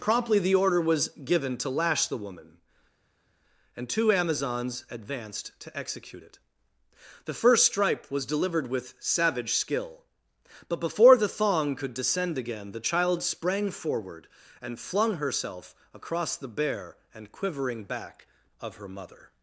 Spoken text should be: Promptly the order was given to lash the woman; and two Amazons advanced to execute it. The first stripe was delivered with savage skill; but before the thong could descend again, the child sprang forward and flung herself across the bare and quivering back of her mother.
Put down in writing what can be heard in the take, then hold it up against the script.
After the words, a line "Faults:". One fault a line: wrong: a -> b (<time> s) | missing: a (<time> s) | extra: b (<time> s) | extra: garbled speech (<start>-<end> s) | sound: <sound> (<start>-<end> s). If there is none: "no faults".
Promptly the order was given to lash the woman; and two Amazons advanced to execute it. The first stripe was delivered with savage skill; but before the thong could descend again, the child sprang forward and flung herself across the bare and quivering back of her mother.
Faults:
no faults